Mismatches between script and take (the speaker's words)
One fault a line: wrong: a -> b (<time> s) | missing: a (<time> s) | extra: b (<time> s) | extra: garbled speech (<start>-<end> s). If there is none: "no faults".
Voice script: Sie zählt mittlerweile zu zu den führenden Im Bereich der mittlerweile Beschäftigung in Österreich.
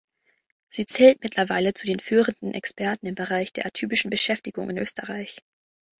missing: zu (1.9 s)
extra: Experten (2.5 s)
wrong: mittlerweile -> atypischen (3.6 s)